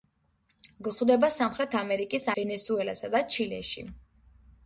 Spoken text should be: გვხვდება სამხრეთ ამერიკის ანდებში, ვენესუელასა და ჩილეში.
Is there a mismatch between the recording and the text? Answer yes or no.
yes